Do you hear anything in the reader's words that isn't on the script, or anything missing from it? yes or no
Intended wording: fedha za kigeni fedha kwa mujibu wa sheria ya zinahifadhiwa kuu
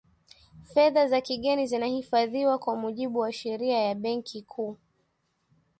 yes